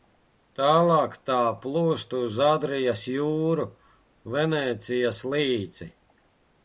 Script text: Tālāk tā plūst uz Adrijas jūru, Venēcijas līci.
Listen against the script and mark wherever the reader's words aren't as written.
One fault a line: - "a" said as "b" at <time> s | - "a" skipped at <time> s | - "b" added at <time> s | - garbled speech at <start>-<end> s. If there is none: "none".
none